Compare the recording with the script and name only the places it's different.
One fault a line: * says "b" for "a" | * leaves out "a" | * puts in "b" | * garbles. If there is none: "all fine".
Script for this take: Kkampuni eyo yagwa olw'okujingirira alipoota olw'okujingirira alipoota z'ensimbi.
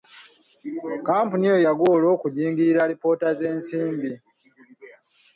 * leaves out "olw'okujingirira alipoota"